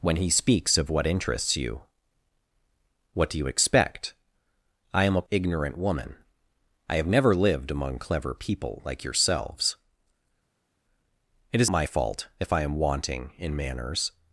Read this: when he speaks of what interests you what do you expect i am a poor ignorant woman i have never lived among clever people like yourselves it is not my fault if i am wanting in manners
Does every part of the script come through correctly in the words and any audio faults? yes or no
no